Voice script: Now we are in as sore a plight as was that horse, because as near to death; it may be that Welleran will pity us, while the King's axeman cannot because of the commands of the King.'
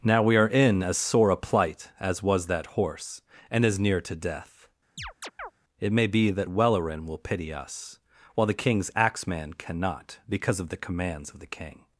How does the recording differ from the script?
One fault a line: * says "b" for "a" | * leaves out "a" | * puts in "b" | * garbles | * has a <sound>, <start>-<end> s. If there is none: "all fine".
* says "and" for "because"
* has a chirp, 5.0-5.5 s